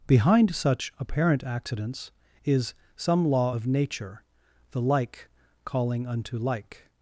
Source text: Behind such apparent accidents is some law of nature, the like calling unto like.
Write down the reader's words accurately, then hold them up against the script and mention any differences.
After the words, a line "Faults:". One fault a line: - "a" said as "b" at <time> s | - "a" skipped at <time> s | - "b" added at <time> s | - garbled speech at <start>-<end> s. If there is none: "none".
Behind such apparent accidents is some law of nature, the like calling unto like.
Faults:
none